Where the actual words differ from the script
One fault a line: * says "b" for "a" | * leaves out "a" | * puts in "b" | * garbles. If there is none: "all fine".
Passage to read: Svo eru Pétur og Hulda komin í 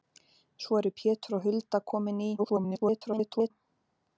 * garbles